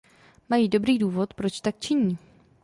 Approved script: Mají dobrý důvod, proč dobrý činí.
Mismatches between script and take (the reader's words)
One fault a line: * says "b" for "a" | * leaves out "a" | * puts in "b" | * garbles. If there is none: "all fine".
* says "tak" for "dobrý"